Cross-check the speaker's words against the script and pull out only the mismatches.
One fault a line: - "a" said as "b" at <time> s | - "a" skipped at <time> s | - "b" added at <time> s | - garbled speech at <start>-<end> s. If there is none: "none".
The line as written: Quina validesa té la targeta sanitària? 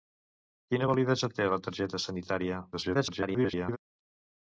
- garbled speech at 2.7-3.8 s